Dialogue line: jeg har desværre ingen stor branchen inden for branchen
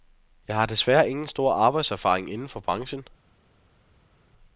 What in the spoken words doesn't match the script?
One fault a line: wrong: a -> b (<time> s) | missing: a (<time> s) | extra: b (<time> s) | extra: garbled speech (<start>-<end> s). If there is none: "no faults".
wrong: branchen -> arbejdserfaring (1.5 s)